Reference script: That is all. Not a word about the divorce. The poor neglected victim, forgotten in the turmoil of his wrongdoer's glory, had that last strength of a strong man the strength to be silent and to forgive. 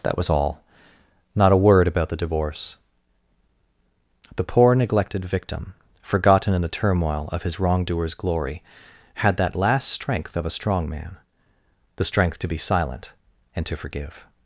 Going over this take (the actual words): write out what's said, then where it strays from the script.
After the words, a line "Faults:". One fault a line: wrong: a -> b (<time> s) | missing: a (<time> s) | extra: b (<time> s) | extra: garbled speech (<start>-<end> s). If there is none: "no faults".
That was all. Not a word about the divorce. The poor neglected victim, forgotten in the turmoil of his wrongdoer's glory, had that last strength of a strong man the strength to be silent and to forgive.
Faults:
wrong: is -> was (0.2 s)